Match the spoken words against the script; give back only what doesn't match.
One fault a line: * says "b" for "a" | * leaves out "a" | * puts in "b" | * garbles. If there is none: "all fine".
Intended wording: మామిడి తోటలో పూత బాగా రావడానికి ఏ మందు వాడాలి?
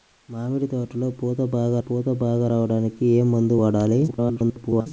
* puts in "పూత బాగా"
* garbles